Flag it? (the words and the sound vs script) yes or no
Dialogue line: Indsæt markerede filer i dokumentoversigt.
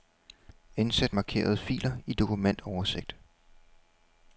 no